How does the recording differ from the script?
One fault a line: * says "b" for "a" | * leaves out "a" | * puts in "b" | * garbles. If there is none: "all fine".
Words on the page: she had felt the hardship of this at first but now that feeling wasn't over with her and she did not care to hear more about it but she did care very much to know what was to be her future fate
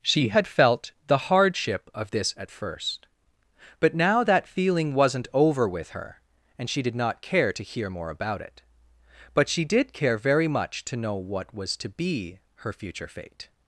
all fine